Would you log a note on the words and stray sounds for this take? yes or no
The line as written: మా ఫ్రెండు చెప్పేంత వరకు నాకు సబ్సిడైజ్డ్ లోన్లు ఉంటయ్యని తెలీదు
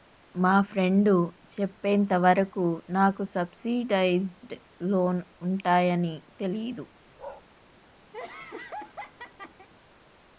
yes